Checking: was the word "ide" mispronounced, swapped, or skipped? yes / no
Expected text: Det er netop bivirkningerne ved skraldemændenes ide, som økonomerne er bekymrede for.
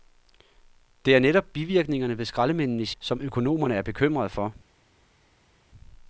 yes